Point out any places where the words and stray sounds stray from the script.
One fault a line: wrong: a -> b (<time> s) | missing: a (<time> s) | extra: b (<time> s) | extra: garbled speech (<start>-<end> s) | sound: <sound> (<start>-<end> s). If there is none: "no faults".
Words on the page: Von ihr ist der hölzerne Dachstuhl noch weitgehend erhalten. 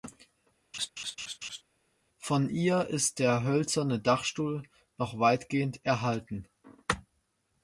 sound: laugh (0.7-1.6 s)